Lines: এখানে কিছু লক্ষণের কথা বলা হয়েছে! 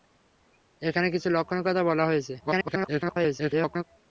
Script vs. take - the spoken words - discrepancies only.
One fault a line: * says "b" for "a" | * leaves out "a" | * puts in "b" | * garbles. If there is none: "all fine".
* garbles